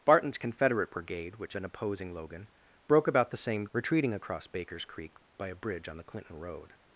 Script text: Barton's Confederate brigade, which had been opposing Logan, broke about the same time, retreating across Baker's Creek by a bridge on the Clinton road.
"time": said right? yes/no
no